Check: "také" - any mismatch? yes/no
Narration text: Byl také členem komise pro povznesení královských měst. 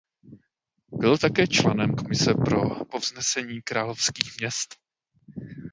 no